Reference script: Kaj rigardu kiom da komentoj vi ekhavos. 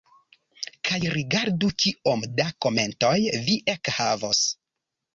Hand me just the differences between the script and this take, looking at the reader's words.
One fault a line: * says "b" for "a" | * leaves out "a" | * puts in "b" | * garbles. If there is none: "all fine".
all fine